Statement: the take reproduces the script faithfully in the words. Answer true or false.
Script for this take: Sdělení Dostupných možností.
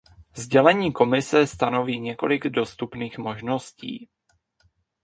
false